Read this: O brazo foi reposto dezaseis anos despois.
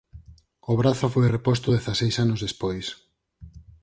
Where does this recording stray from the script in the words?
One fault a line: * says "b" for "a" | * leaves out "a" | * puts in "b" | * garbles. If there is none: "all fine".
all fine